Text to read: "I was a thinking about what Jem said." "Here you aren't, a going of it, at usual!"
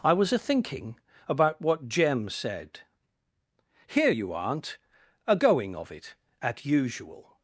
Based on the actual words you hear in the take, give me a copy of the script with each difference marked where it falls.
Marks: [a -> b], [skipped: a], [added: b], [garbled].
"I was a thinking about what Jem said." "Here you aren't, a going of it, at usual!"